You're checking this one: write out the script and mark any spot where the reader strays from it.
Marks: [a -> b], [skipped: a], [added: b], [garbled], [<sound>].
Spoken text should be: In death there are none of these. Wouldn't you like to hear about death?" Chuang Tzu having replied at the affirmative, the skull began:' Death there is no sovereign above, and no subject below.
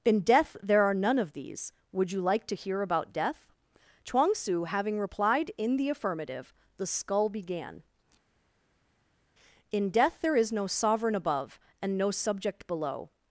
In death there are none of these. [Wouldn't -> Would] you like to hear about death?" Chuang Tzu having replied [at -> in] the affirmative, the skull began:' [added: In] Death there is no sovereign above, and no subject below.